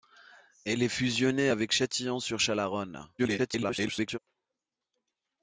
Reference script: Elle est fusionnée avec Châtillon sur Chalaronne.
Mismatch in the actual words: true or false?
true